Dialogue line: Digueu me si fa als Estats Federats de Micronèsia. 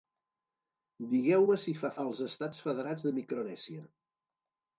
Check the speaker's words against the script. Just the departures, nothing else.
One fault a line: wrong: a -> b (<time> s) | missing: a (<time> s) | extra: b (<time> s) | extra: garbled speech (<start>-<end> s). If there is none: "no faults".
no faults